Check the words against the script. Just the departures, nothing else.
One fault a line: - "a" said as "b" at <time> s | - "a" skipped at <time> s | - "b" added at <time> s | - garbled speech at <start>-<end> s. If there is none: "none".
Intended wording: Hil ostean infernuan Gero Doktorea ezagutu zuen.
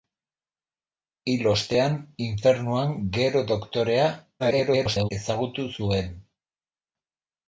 - garbled speech at 4.4-5.1 s